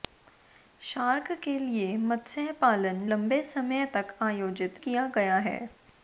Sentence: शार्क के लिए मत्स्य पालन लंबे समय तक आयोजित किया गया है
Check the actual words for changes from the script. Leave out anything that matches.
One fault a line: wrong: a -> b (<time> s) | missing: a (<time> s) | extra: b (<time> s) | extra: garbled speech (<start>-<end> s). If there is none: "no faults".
no faults